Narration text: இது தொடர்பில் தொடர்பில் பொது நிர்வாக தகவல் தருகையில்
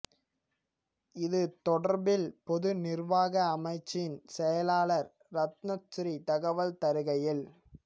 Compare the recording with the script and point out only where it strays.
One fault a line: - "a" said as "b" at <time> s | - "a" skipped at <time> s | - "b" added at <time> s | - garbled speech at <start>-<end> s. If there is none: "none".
- "தொடர்பில்" skipped at 2.2 s
- "அமைச்சின் செயலாளர் ரட்ணசிறி" added at 3.5 s